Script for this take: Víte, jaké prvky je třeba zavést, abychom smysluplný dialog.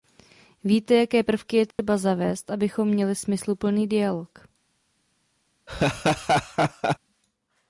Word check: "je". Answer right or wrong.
right